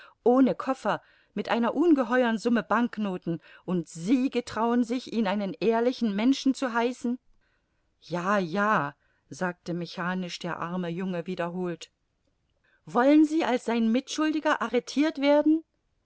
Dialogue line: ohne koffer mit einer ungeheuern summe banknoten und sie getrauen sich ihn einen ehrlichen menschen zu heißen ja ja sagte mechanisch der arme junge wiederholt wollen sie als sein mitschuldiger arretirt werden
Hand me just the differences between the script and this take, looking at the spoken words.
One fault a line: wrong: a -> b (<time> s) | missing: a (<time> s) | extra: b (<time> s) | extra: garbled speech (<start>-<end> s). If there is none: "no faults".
no faults